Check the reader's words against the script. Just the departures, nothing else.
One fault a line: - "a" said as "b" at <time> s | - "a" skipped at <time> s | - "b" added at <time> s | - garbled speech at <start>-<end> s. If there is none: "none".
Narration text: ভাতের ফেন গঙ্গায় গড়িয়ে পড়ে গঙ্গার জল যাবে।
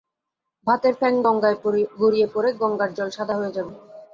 - "সাদা হয়ে" added at 3.2 s